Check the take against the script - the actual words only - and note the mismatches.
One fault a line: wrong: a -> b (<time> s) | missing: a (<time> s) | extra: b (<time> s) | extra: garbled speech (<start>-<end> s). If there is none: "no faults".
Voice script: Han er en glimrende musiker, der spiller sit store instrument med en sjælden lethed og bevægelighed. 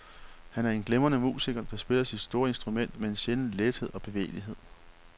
no faults